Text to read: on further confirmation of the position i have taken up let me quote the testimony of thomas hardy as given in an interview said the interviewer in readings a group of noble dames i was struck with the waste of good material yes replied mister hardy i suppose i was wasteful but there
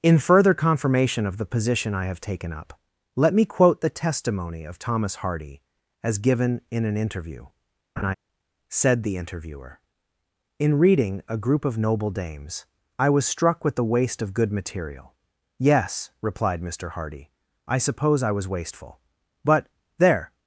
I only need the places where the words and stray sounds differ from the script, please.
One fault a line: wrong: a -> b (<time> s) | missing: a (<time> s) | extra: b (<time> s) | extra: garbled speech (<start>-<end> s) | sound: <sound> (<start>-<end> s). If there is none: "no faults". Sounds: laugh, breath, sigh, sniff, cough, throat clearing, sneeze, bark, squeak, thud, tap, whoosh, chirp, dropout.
wrong: on -> in (0.0 s)
sound: laugh (8.0-8.1 s)
wrong: readings -> reading (10.8 s)